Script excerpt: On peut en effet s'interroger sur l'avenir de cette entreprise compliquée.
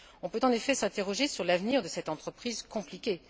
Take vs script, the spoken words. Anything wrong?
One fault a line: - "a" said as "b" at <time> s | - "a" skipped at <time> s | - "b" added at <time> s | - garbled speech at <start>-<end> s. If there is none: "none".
none